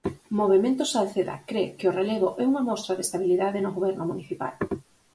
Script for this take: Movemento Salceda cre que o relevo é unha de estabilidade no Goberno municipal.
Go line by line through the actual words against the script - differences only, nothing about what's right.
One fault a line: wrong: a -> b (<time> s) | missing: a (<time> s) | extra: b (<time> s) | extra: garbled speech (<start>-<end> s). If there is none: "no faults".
extra: mostra (2.7 s)